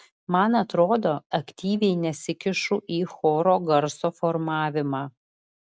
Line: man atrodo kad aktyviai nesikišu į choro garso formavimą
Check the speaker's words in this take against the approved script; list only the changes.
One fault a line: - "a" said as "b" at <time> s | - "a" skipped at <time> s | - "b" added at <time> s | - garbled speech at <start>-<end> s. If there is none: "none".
- "kad" skipped at 1.1 s